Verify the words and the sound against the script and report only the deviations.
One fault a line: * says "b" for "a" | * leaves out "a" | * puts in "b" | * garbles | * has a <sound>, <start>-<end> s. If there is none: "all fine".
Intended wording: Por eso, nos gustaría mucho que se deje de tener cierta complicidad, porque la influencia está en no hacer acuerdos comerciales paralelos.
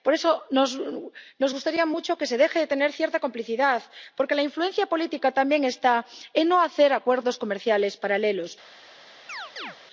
* puts in "política también"
* has a chirp, 9.3-9.8 s